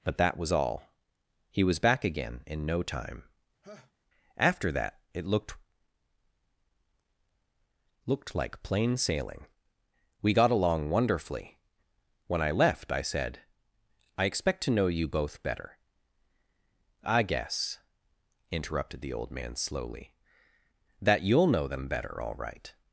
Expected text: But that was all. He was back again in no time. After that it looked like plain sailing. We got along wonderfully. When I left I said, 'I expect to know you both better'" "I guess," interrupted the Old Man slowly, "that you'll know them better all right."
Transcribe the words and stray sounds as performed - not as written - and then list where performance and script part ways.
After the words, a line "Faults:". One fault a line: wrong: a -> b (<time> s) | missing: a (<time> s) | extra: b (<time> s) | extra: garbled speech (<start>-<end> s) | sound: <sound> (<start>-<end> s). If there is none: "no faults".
But that was all. He was back again in no time. After that it looked looked like plain sailing. We got along wonderfully. When I left I said, 'I expect to know you both better'" "I guess," interrupted the Old Man slowly, "that you'll know them better all right."
Faults:
sound: laugh (3.6-3.9 s)
extra: looked (8.1 s)